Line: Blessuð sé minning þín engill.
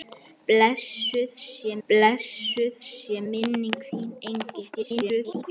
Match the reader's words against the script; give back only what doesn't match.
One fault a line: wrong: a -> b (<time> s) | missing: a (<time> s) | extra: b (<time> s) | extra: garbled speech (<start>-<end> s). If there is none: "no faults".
extra: blessuð sé (1.9 s)
extra: garbled speech (4.7-5.4 s)